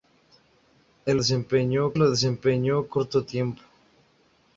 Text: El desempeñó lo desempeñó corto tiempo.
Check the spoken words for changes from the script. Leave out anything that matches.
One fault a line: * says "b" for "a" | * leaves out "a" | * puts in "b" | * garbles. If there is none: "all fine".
all fine